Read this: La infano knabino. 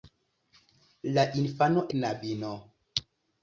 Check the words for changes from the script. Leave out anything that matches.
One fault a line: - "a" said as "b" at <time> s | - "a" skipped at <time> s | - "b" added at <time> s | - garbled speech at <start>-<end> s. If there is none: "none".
none